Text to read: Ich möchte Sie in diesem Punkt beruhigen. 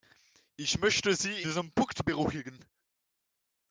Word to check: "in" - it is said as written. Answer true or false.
false